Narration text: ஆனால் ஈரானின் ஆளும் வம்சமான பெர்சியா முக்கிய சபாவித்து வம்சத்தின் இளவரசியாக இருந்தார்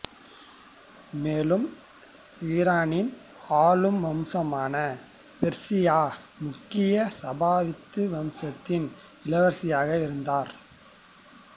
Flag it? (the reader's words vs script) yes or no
yes